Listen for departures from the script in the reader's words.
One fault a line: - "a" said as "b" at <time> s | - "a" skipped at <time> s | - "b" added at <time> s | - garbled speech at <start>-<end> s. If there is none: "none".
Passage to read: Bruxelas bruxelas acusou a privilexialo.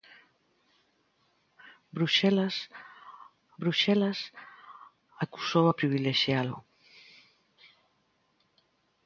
none